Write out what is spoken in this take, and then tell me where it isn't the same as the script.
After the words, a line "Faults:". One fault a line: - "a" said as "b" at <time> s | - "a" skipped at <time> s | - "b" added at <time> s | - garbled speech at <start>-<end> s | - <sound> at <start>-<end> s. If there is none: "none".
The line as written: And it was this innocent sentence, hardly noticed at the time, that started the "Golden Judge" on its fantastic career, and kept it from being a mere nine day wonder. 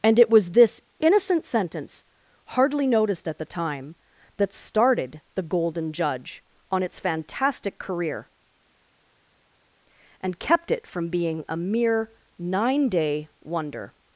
And it was this innocent sentence, hardly noticed at the time, that started the "Golden Judge" on its fantastic career, and kept it from being a mere nine day wonder.
Faults:
none